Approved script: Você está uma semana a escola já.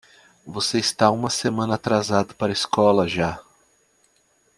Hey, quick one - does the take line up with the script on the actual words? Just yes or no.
no